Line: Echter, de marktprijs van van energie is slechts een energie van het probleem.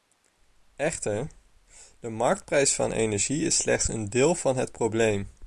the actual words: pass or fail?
fail